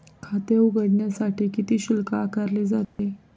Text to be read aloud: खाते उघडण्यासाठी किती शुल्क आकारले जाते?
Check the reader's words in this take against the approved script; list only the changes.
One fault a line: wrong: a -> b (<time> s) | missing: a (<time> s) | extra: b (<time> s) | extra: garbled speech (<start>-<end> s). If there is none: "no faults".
no faults